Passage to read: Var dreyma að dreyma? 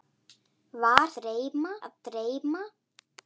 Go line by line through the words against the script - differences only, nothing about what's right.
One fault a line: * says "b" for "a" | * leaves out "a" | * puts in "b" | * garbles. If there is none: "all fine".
all fine